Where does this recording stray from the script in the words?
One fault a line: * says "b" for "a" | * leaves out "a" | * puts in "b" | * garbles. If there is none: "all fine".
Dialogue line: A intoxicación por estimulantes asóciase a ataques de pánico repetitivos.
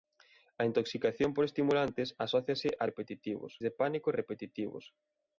* says "repetitivos" for "ataques"